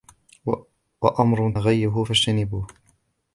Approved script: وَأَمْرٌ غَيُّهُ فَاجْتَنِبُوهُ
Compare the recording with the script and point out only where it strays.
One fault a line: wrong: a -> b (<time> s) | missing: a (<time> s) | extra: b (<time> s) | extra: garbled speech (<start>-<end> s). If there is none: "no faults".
no faults